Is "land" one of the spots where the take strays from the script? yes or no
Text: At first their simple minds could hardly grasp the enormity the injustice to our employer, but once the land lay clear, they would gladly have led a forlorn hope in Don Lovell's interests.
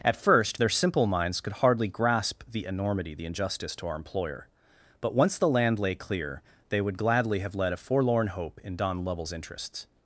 no